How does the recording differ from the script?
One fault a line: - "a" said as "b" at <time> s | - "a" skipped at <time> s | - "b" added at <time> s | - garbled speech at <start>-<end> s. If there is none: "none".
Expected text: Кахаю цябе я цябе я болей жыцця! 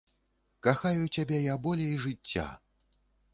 - "цябе я" skipped at 1.6 s